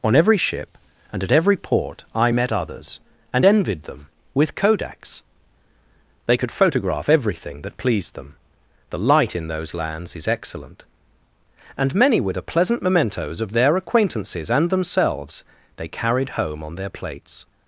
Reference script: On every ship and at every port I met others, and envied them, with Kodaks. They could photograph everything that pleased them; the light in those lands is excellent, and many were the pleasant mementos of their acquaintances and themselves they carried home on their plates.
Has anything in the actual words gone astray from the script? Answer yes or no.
no